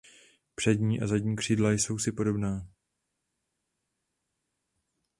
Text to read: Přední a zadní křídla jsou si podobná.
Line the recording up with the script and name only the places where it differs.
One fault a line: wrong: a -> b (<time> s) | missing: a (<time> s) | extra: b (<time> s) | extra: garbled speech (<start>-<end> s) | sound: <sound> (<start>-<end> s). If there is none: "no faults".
no faults